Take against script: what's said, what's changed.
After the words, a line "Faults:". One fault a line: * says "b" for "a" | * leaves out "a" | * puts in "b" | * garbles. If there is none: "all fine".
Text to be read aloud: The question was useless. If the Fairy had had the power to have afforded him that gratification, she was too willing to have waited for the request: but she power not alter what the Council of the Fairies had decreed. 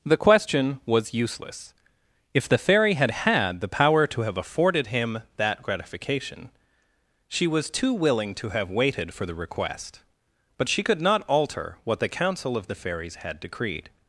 The question was useless. If the Fairy had had the power to have afforded him that gratification, she was too willing to have waited for the request: but she could not alter what the Council of the Fairies had decreed.
Faults:
* says "could" for "power"